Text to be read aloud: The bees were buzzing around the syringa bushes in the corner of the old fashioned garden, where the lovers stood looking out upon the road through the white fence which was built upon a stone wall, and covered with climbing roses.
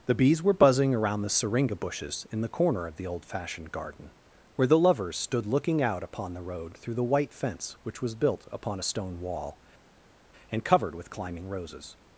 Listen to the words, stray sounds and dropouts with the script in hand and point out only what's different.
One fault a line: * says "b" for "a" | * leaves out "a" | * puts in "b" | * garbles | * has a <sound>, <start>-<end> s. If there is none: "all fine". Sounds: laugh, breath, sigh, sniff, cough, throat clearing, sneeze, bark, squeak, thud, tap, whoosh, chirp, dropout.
all fine